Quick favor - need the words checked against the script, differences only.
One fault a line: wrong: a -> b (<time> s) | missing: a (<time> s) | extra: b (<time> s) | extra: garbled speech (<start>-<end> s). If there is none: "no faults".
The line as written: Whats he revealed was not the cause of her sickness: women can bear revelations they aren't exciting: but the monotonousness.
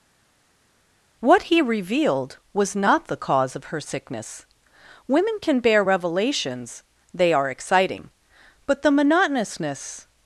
wrong: Whats -> What (1.2 s)
wrong: aren't -> are (7.3 s)